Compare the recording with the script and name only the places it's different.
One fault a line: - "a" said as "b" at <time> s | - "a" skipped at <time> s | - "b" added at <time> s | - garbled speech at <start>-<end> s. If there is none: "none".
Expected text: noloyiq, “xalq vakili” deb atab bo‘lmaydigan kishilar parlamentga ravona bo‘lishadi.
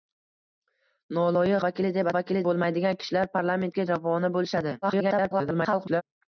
- "xalq" skipped at 1.6 s
- "atab" said as "vakili" at 2.2 s
- garbled speech at 4.8-6.0 s